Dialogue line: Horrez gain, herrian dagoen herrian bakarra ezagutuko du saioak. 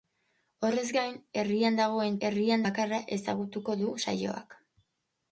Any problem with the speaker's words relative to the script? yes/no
no